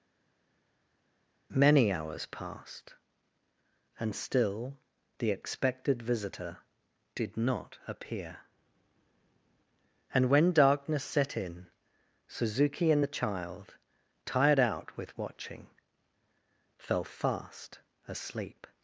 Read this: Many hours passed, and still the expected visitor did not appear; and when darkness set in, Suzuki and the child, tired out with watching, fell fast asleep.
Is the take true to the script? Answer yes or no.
yes